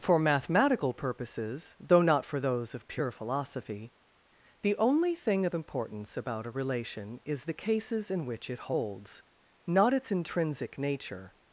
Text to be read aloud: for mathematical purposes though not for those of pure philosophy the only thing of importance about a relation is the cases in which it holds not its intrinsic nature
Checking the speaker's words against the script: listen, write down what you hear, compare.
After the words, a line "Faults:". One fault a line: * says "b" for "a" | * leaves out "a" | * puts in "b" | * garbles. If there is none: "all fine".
for mathematical purposes though not for those of pure philosophy the only thing of importance about a relation is the cases in which it holds not its intrinsic nature
Faults:
all fine